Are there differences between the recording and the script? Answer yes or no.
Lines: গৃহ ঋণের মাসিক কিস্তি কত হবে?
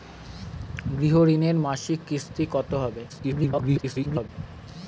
yes